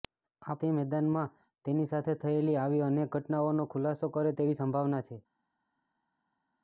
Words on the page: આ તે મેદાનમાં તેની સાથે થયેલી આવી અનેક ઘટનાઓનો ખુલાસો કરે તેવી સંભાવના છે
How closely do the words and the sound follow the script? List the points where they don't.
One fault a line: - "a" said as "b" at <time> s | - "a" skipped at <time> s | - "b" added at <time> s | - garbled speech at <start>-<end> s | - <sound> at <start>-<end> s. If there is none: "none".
none